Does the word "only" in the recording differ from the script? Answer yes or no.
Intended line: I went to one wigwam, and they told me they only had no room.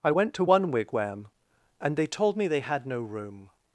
yes